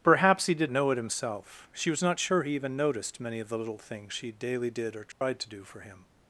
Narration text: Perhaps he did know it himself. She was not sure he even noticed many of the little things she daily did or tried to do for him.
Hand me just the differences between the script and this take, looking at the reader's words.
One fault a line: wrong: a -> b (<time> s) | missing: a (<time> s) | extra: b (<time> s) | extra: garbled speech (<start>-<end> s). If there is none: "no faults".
no faults